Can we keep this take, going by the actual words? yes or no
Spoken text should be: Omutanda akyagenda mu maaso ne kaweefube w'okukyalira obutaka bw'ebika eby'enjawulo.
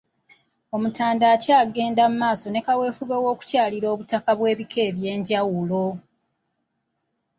yes